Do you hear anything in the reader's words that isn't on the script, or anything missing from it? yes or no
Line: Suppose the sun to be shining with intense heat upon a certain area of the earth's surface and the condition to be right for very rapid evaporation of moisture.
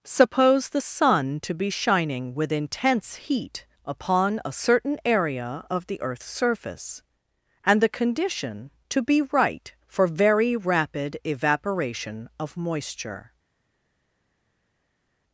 no